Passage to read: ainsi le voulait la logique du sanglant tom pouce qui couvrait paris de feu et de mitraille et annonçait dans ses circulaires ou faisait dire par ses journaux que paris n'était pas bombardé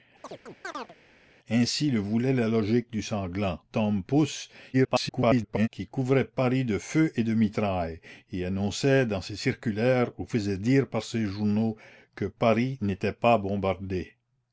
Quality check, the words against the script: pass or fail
fail